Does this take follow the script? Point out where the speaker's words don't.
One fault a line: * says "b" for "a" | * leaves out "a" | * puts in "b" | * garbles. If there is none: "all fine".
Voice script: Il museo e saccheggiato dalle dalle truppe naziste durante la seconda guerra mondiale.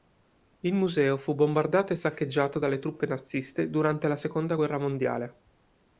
* puts in "fu bombardato"
* leaves out "dalle"